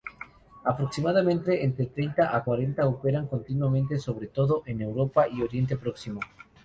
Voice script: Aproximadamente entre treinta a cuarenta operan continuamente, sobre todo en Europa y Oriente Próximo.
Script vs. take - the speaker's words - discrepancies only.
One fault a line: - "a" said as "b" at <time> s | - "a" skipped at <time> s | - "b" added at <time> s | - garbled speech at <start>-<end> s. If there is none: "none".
none